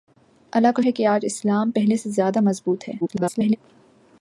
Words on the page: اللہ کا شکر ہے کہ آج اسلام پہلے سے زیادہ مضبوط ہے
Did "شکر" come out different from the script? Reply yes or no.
yes